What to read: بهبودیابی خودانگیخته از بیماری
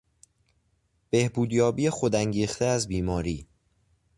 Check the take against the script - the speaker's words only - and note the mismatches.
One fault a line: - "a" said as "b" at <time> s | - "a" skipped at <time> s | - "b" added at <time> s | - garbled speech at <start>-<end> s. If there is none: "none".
none